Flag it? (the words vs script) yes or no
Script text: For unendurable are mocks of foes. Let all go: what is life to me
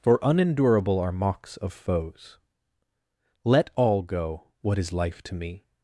no